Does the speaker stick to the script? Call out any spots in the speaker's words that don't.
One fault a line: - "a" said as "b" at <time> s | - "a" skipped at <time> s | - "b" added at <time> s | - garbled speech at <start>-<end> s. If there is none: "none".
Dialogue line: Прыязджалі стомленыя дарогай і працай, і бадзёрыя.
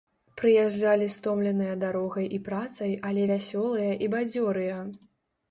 - "але вясёлыя" added at 3.1 s